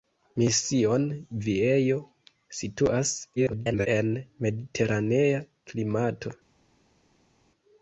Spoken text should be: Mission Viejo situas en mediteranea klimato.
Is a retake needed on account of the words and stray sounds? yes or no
yes